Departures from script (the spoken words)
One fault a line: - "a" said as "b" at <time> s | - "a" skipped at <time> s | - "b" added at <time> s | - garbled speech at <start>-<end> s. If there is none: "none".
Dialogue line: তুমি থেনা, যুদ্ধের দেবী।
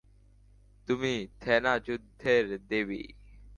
none